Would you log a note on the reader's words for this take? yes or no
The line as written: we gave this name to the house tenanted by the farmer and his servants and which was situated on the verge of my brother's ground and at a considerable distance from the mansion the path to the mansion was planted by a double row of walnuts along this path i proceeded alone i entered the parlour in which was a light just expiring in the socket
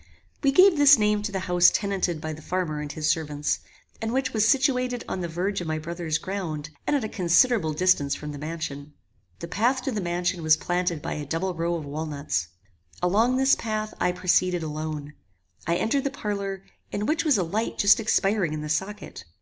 no